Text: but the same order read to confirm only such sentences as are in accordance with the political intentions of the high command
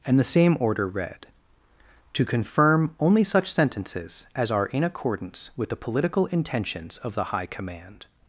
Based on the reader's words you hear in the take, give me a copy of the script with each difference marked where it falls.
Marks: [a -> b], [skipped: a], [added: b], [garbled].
[but -> and] the same order read to confirm only such sentences as are in accordance with the political intentions of the high command